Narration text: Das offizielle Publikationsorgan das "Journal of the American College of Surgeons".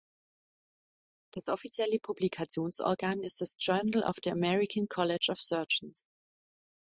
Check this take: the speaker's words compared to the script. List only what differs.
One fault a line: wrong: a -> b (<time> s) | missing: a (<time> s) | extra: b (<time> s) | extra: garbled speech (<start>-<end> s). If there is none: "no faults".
extra: ist (3.2 s)